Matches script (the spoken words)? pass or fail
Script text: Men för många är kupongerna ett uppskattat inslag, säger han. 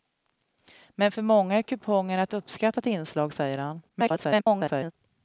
fail